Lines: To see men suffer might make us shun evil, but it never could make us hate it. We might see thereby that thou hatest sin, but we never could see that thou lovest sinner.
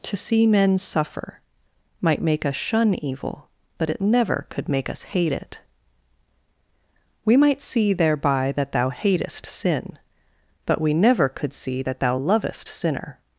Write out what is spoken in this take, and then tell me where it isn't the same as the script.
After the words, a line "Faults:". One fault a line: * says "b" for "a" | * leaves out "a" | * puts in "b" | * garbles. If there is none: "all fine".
To see men suffer might make us shun evil, but it never could make us hate it. We might see thereby that thou hatest sin, but we never could see that thou lovest sinner.
Faults:
all fine